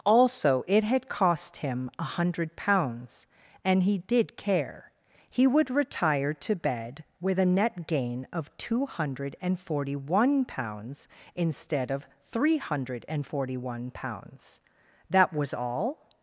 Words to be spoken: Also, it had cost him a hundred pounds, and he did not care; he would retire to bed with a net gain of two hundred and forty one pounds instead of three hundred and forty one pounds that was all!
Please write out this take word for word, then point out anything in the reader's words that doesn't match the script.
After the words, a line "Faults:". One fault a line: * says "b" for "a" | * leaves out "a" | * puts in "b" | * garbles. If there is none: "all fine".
Also, it had cost him a hundred pounds, and he did care; he would retire to bed with a net gain of two hundred and forty one pounds instead of three hundred and forty one pounds that was all!
Faults:
* leaves out "not"